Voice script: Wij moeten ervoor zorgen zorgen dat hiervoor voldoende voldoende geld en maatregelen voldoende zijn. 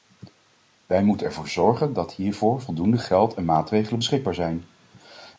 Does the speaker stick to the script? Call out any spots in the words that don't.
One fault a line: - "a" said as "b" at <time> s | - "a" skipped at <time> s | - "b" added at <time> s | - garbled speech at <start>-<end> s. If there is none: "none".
- "zorgen" skipped at 1.9 s
- "voldoende" skipped at 3.0 s
- "voldoende" said as "beschikbaar" at 4.0 s